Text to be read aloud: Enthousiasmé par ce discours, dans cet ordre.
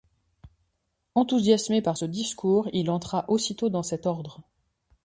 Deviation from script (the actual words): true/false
true